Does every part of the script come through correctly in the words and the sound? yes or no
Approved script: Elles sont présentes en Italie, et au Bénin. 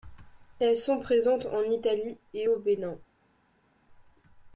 yes